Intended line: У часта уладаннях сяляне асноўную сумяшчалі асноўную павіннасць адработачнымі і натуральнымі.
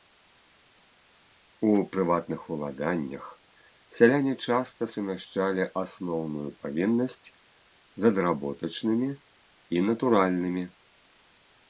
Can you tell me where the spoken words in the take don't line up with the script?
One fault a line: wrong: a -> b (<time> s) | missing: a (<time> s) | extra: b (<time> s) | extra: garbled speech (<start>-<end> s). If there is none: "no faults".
wrong: часта -> прыватных (1.9 s)
wrong: асноўную -> часта (4.5 s)
extra: з (8.0 s)